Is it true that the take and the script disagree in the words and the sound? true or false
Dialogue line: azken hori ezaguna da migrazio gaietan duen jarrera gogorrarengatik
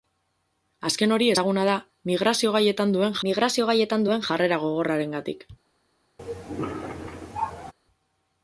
true